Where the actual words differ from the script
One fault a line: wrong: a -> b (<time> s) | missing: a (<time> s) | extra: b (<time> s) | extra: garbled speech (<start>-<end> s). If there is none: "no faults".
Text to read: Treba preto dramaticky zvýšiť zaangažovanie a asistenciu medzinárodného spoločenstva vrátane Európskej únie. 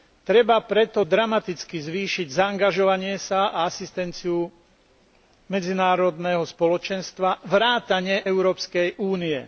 extra: sa (3.2 s)